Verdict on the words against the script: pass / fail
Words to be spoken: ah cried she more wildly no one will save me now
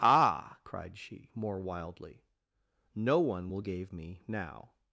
fail